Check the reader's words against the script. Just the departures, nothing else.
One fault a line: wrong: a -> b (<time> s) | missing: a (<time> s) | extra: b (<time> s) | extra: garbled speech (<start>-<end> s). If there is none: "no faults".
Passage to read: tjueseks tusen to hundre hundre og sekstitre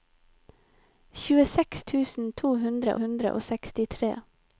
no faults